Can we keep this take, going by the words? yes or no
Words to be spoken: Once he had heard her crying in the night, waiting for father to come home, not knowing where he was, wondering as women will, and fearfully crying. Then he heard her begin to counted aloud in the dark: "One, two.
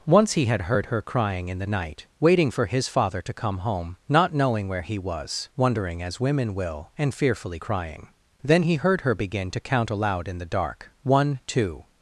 no